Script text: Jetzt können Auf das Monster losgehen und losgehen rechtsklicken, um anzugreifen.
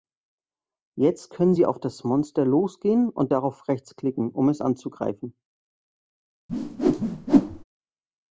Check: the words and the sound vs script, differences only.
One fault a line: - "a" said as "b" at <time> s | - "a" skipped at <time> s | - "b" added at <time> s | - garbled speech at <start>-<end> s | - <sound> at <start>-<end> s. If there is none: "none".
- "Sie" added at 1.5 s
- "losgehen" said as "darauf" at 3.3 s
- "es" added at 4.5 s
- whoosh at 6.5-7.6 s